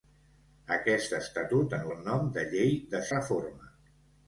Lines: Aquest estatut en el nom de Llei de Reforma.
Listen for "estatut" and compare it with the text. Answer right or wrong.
right